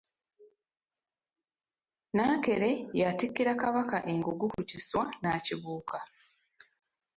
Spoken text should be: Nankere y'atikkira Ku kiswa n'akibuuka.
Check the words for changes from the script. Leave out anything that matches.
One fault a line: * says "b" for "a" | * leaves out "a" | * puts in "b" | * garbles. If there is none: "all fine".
* puts in "Kabaka engugu"